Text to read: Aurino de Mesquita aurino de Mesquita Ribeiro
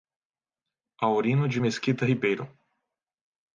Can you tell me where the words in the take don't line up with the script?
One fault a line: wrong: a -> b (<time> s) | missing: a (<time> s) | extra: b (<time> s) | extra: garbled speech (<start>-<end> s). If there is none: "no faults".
missing: aurino de Mesquita (2.0 s)